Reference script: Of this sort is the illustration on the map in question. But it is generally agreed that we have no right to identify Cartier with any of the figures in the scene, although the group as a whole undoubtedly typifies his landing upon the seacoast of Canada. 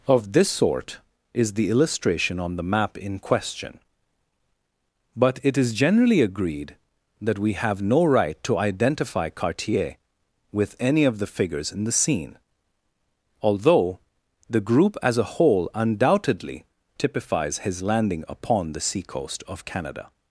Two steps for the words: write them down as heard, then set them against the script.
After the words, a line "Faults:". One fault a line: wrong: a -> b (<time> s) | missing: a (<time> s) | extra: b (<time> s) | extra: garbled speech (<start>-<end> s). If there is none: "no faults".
Of this sort is the illustration on the map in question. But it is generally agreed that we have no right to identify Cartier with any of the figures in the scene, although the group as a whole undoubtedly typifies his landing upon the seacoast of Canada.
Faults:
no faults